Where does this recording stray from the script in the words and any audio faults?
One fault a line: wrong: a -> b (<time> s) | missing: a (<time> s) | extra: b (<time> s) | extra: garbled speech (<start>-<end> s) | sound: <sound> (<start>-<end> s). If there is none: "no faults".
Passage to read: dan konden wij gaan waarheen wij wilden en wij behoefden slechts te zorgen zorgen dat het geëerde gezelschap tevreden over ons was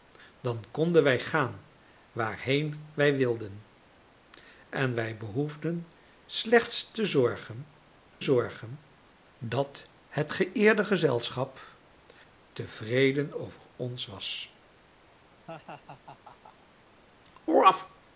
sound: laugh (15.5-16.7 s)